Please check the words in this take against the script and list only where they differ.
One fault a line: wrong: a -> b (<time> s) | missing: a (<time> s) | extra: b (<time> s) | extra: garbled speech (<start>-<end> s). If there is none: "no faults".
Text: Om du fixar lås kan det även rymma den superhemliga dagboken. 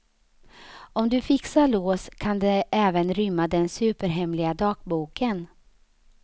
no faults